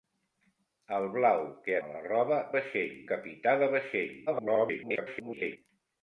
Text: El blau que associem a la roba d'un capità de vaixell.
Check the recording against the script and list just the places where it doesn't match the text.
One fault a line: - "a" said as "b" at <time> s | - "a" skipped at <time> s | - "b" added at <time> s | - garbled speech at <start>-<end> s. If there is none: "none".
- "associem" skipped at 1.8 s
- "d'un" said as "vaixell" at 2.6 s
- garbled speech at 4.3-5.6 s